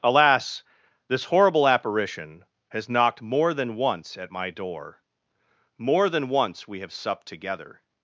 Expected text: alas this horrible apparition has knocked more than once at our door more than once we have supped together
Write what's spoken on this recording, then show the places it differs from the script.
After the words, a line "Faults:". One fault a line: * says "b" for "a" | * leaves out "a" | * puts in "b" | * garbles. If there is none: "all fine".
alas this horrible apparition has knocked more than once at my door more than once we have supped together
Faults:
* says "my" for "our"